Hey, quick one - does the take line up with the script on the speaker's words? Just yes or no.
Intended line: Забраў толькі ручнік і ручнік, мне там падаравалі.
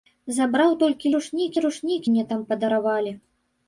yes